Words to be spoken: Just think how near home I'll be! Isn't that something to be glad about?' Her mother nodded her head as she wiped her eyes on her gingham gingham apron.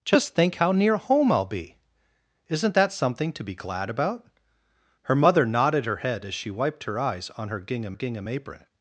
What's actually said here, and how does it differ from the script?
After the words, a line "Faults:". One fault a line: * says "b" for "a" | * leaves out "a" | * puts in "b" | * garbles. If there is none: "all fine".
Just think how near home I'll be! Isn't that something to be glad about?' Her mother nodded her head as she wiped her eyes on her gingham gingham apron.
Faults:
all fine